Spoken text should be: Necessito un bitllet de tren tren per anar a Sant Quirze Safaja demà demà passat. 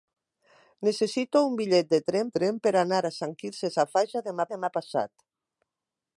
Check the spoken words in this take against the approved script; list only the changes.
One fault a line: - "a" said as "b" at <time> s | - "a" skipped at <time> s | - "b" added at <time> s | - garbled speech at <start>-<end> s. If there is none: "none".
none